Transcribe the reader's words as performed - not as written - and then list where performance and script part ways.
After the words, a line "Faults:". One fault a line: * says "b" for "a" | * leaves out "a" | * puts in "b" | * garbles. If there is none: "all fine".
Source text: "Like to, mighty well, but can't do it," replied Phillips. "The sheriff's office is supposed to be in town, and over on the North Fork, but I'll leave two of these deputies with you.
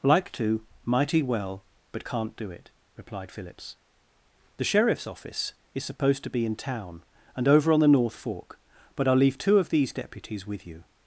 "Like to, mighty well, but can't do it," replied Phillips. "The sheriff's office is supposed to be in town, and over on the North Fork, but I'll leave two of these deputies with you.
Faults:
all fine